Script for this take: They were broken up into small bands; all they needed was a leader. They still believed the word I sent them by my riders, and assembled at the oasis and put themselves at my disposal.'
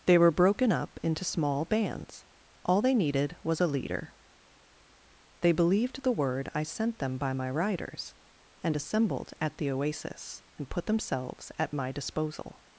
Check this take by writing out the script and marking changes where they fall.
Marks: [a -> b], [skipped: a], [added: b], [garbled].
They were broken up into small bands; all they needed was a leader. They [skipped: still] believed the word I sent them by my riders, and assembled at the oasis and put themselves at my disposal.'